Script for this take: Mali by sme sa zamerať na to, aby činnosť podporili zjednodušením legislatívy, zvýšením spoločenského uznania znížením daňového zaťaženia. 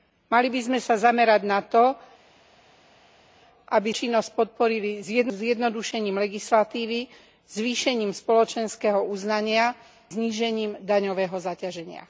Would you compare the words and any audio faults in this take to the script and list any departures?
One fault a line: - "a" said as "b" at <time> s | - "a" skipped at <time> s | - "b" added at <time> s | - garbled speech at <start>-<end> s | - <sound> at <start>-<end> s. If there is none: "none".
none